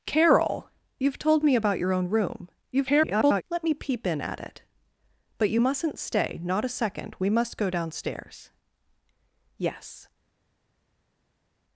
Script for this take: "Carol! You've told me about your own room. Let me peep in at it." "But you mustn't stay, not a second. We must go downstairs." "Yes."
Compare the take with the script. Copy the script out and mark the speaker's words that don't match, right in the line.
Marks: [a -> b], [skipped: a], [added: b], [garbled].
"Carol! You've told me about your own room. [garbled] Let me peep in at it." "But you mustn't stay, not a second. We must go downstairs." "Yes."